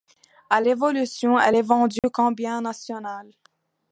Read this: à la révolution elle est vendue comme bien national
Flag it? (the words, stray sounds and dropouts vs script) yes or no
yes